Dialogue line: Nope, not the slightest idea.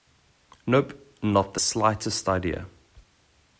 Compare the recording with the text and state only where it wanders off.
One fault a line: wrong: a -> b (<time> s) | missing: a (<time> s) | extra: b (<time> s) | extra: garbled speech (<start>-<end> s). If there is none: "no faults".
no faults